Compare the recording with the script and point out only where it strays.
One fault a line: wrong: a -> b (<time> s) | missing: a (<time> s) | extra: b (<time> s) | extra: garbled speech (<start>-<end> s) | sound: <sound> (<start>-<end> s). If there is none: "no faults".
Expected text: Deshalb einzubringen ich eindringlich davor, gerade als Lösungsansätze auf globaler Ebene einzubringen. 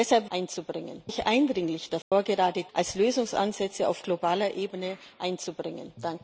sound: dropout (2.0-2.1 s)